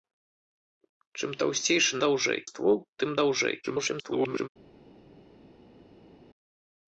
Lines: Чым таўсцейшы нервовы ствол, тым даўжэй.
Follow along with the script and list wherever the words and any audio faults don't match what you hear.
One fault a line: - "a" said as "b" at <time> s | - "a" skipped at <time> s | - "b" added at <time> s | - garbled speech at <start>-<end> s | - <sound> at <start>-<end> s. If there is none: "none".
- "нервовы" said as "даўжэй" at 2.0 s
- garbled speech at 3.6-4.5 s